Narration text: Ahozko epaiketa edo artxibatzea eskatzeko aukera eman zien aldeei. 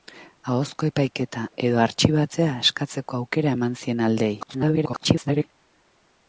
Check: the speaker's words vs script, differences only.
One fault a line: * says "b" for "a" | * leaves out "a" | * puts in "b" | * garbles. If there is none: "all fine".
* garbles